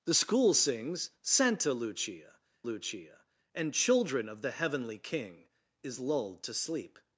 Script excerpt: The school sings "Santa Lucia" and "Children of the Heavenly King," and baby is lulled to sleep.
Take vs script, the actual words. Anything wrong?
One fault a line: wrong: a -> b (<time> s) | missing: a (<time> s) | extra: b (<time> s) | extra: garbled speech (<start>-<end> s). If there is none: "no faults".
extra: Lucia (2.6 s)
missing: and baby (5.5 s)